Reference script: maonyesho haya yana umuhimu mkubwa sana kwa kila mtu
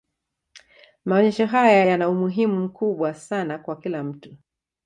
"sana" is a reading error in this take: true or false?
false